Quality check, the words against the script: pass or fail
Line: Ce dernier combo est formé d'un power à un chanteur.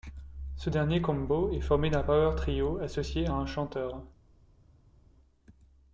fail